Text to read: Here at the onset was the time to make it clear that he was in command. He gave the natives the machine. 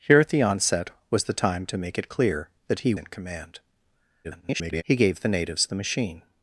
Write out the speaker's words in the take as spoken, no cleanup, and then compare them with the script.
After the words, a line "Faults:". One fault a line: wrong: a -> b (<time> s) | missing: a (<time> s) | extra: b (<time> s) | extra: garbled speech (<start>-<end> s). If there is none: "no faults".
Here at the onset was the time to make it clear that he in command. [garbled] He gave the natives the machine.
Faults:
missing: was (2.9 s)
extra: garbled speech (4.2-4.8 s)